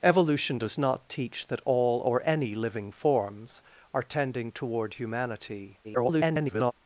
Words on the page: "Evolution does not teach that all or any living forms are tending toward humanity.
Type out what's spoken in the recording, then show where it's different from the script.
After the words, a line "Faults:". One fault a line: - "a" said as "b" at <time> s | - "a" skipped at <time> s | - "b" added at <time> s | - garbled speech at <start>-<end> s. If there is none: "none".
"Evolution does not teach that all or any living forms are tending toward humanity. [garbled]
Faults:
- garbled speech at 5.8-6.7 s